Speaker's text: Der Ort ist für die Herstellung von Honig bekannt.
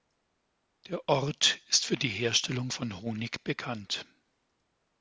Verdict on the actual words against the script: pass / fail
pass